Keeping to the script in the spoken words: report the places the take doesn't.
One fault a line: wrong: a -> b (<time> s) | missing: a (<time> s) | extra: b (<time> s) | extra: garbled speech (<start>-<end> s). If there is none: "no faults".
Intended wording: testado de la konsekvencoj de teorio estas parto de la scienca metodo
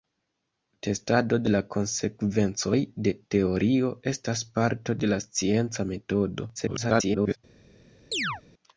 extra: garbled speech (6.5-7.4 s)